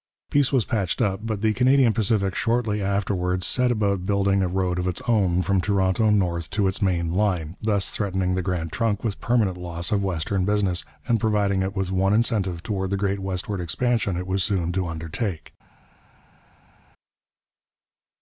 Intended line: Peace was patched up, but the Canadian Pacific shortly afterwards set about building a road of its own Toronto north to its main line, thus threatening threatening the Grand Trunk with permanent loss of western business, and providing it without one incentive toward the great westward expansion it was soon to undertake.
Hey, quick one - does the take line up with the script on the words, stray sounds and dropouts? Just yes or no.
no